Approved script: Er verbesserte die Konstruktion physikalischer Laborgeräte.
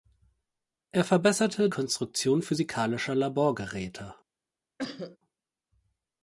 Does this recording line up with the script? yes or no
no